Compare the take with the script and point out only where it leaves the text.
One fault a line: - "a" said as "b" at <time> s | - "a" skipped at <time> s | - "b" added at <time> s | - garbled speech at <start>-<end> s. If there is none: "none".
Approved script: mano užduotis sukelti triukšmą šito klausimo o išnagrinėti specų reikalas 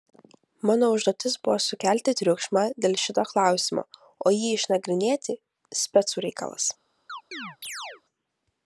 - "buvo" added at 1.5 s
- "dėl" added at 2.9 s
- "jį" added at 4.4 s